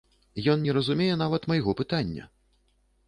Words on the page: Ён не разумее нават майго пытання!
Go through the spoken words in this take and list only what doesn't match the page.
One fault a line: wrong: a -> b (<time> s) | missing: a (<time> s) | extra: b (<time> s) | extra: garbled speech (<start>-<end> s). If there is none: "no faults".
no faults